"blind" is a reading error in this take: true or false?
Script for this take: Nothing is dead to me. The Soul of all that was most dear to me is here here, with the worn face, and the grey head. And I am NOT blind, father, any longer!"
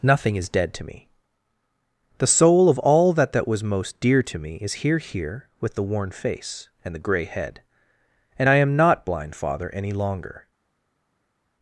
false